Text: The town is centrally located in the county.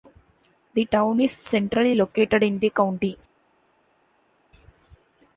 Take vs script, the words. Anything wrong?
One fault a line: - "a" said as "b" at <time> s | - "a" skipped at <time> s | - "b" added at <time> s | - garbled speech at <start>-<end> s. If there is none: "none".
none